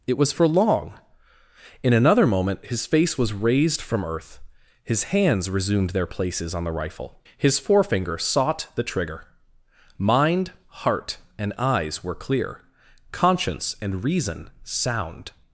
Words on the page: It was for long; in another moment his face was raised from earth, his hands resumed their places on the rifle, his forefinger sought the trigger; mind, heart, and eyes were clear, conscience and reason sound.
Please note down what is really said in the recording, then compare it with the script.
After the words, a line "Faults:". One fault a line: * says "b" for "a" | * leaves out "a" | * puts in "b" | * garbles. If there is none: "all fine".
It was for long; in another moment his face was raised from earth, his hands resumed their places on the rifle, his forefinger sought the trigger; mind, heart, and eyes were clear, conscience and reason sound.
Faults:
all fine